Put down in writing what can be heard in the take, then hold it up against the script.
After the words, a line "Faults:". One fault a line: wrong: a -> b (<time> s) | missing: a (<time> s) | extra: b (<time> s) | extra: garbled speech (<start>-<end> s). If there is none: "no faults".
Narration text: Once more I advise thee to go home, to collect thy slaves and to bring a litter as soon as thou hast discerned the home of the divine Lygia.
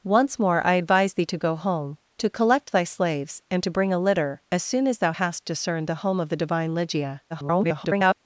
Once more I advise thee to go home, to collect thy slaves and to bring a litter as soon as thou hast discerned the home of the divine Lygia. [garbled]
Faults:
extra: garbled speech (7.3-8.1 s)